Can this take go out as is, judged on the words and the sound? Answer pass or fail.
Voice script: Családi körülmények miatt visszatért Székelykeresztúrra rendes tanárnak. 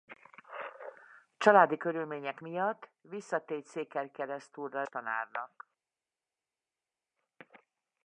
fail